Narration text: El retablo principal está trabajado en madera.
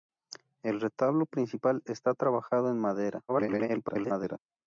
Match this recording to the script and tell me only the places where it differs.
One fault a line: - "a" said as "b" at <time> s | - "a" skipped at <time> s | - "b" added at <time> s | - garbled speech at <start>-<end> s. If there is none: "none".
- garbled speech at 3.3-4.4 s